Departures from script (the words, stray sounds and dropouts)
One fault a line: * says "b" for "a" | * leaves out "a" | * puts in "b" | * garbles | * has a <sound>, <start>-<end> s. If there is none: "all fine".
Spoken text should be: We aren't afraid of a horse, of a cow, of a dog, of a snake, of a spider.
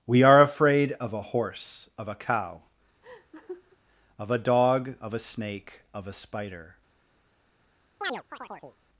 * says "are" for "aren't"
* has a laugh, 3.0-3.8 s
* has a chirp, 8.0-8.8 s